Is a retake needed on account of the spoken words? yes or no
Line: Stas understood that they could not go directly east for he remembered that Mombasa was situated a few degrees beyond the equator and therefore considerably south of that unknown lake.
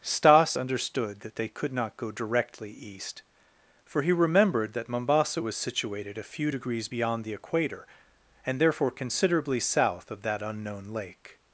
no